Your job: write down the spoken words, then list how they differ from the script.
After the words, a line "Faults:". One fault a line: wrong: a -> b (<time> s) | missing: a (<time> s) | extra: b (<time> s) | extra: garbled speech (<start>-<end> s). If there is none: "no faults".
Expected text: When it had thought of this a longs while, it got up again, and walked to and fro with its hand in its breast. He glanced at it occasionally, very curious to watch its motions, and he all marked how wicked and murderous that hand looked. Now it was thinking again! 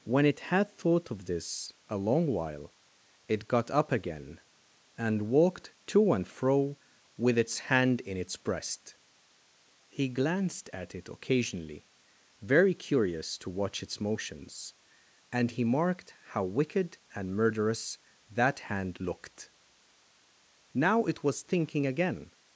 When it had thought of this a long while, it got up again, and walked to and fro with its hand in its breast. He glanced at it occasionally, very curious to watch its motions, and he marked how wicked and murderous that hand looked. Now it was thinking again!
Faults:
wrong: longs -> long (2.0 s)
missing: all (15.6 s)